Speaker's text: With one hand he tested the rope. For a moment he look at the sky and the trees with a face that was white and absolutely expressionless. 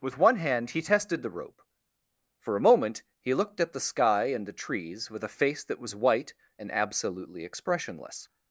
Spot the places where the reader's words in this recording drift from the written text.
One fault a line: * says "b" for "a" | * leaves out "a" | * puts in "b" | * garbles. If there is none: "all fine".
* says "looked" for "look"